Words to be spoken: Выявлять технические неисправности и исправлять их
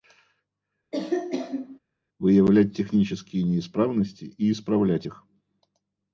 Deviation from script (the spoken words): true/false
false